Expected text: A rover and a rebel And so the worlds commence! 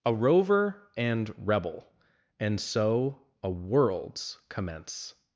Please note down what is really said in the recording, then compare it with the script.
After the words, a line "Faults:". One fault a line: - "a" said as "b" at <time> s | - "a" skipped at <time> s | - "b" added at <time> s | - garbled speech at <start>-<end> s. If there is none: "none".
A rover and rebel And so a worlds commence!
Faults:
- "a" skipped at 1.3 s
- "the" said as "a" at 3.4 s